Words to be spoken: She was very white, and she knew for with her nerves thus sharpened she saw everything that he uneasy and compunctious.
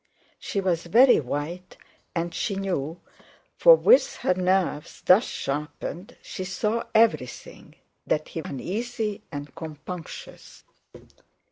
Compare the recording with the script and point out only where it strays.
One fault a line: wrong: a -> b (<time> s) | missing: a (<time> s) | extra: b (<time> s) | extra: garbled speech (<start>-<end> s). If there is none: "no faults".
no faults